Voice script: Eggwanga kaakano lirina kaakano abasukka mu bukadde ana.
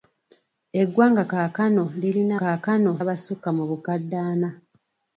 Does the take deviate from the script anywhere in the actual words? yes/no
no